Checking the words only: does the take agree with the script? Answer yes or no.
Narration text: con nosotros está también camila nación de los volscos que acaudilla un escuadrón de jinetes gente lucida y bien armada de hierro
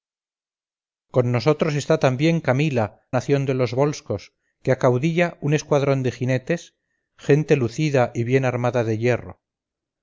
yes